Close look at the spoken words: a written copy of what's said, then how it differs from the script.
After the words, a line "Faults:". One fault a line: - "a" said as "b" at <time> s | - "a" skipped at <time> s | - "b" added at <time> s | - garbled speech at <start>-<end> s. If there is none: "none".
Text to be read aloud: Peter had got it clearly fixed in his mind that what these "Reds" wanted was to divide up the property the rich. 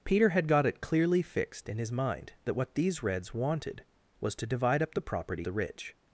Peter had got it clearly fixed in his mind that what these "Reds" wanted was to divide up the property the rich.
Faults:
none